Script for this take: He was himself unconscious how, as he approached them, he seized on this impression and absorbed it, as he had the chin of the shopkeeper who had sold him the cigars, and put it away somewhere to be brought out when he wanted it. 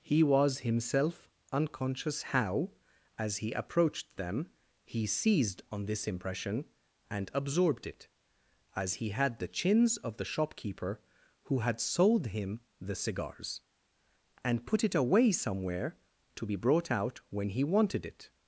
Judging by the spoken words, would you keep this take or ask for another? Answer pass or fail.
fail